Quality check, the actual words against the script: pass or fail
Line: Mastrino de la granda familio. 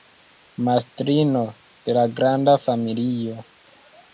pass